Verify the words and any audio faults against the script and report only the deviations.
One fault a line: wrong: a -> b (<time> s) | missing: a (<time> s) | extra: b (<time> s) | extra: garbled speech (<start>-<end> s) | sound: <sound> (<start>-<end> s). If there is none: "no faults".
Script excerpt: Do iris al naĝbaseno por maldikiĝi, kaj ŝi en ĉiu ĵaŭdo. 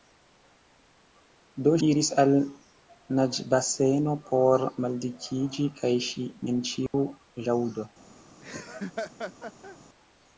sound: dropout (6.9-6.9 s)
sound: laugh (8.4-9.8 s)